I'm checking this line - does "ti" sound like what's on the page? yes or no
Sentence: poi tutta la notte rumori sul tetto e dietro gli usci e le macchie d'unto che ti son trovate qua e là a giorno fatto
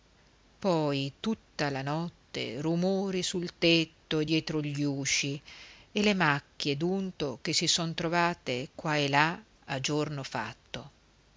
no